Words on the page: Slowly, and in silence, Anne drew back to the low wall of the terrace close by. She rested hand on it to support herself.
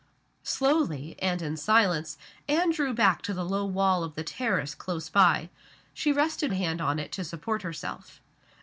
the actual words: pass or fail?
pass